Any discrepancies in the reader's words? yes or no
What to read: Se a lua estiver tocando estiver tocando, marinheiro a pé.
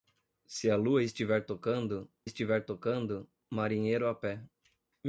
no